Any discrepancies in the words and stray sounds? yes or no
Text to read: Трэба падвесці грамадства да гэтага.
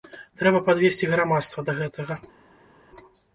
no